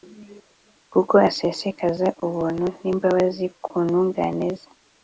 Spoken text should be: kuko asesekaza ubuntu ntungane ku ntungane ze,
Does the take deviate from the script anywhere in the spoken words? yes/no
yes